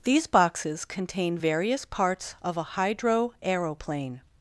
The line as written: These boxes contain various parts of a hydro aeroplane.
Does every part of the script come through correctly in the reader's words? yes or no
yes